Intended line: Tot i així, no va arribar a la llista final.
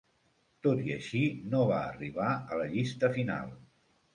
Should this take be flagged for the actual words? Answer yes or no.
no